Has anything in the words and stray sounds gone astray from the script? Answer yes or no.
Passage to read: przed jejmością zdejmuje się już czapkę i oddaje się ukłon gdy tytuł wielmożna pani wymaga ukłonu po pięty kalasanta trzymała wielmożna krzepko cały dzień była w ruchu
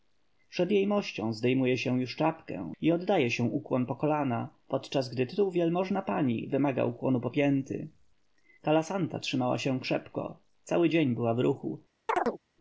yes